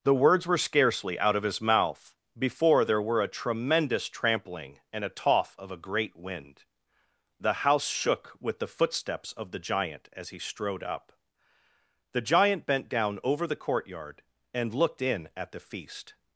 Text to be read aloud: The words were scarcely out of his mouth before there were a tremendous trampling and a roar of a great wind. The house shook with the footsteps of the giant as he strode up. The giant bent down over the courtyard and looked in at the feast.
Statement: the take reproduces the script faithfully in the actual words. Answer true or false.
false